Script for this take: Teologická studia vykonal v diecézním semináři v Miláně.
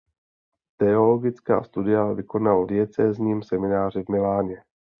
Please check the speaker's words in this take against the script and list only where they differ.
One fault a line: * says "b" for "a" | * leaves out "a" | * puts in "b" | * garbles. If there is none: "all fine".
* leaves out "v"